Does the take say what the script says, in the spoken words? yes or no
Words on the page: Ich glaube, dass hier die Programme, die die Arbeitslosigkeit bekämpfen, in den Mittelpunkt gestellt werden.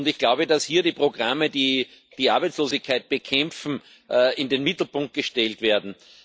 yes